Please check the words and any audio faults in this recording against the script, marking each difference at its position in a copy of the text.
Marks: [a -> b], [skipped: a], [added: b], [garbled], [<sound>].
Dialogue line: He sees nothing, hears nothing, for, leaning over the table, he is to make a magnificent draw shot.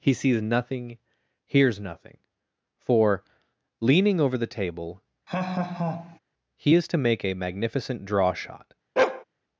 He sees nothing, hears nothing, for, leaning over the table, [laugh] he is to make a magnificent draw shot. [bark]